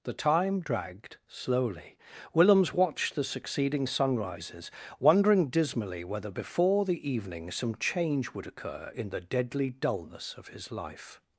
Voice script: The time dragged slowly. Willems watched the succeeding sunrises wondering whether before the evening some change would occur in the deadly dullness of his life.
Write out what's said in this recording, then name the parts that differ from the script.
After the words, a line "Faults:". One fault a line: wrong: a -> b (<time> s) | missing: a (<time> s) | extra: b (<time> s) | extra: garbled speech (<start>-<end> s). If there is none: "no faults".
The time dragged slowly. Willems watched the succeeding sunrises wondering dismally whether before the evening some change would occur in the deadly dullness of his life.
Faults:
extra: dismally (5.5 s)